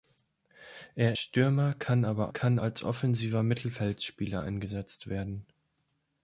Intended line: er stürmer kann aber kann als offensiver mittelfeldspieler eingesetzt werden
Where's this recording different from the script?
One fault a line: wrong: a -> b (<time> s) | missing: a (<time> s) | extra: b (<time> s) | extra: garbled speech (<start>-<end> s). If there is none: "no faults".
no faults